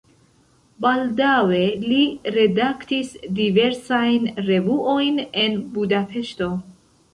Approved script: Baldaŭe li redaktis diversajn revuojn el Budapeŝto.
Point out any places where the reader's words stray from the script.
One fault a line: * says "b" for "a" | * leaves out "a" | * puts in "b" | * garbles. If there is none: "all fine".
* says "en" for "el"